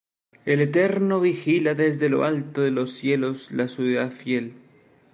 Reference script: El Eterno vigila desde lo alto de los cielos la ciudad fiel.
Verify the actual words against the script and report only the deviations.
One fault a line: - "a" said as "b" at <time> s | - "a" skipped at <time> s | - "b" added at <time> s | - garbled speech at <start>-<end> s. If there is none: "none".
none